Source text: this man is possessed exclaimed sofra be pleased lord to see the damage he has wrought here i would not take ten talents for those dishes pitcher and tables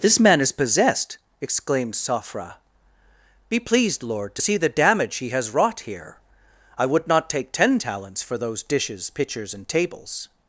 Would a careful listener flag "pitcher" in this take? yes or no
yes